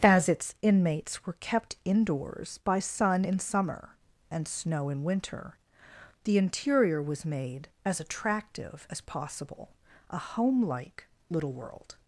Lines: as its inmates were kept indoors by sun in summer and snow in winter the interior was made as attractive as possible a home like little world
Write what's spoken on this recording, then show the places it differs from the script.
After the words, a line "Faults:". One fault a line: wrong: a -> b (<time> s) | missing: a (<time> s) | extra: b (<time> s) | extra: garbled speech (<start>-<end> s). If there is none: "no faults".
as its inmates were kept indoors by sun in summer and snow in winter the interior was made as attractive as possible a home like little world
Faults:
no faults